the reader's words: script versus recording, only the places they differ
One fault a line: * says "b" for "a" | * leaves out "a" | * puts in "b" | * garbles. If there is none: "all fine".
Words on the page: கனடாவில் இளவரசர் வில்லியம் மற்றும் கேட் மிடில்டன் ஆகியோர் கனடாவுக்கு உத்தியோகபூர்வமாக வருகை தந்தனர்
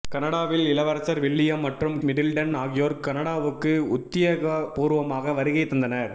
* leaves out "கேட்"